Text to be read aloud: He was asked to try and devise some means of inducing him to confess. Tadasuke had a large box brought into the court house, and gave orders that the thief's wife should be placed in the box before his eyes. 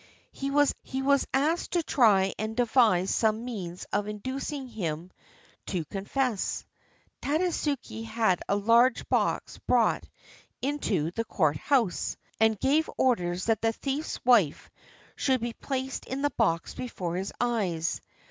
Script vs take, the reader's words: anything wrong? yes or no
yes